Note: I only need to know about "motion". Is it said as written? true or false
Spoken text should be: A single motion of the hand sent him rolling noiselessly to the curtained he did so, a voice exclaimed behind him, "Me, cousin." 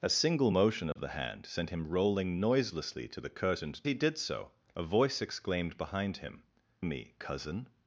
true